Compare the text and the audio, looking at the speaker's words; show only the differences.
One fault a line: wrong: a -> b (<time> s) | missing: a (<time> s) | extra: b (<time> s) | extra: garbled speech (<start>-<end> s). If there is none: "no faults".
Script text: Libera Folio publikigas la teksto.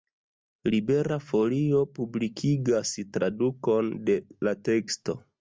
extra: tradukon de (3.2 s)